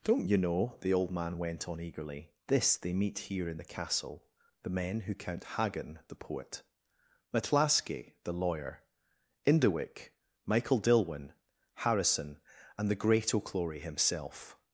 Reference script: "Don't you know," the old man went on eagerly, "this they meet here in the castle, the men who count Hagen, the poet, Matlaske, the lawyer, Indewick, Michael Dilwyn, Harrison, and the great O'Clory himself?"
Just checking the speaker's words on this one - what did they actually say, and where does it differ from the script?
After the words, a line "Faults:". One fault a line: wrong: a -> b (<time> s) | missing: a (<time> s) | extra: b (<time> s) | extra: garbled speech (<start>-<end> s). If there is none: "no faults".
"Don't you know," the old man went on eagerly, "this they meet here in the castle, the men who count Hagen, the poet, Matlaske, the lawyer, Indewick, Michael Dilwyn, Harrison, and the great O'Clory himself?"
Faults:
no faults